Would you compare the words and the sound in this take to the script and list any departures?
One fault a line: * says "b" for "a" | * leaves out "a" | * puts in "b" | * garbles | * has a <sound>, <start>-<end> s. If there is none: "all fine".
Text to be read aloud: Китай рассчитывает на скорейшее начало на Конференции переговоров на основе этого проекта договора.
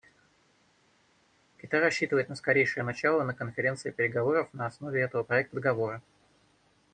all fine